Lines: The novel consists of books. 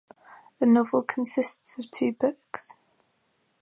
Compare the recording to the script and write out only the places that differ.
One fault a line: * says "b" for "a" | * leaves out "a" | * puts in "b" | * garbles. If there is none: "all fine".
* puts in "two"